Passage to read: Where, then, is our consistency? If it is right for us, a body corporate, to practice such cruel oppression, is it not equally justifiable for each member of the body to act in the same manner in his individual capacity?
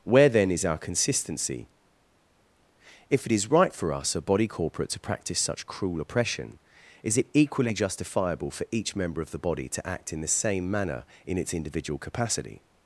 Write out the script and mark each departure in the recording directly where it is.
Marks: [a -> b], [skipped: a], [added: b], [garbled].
Where, then, is our consistency? If it is right for us, a body corporate, to practice such cruel oppression, is it [skipped: not] equally justifiable for each member of the body to act in the same manner in [his -> its] individual capacity?